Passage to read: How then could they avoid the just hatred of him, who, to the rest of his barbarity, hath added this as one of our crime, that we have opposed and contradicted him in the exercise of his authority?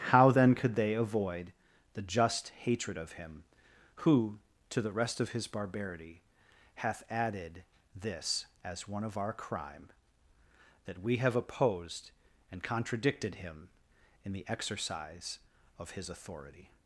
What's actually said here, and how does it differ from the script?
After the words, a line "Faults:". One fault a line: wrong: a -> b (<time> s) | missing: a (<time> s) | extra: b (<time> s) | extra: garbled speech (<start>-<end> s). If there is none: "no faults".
How then could they avoid the just hatred of him, who, to the rest of his barbarity, hath added this as one of our crime, that we have opposed and contradicted him in the exercise of his authority?
Faults:
no faults